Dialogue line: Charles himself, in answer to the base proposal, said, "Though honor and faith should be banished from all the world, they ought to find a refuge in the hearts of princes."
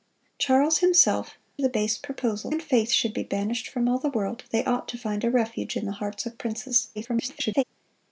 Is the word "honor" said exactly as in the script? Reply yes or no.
no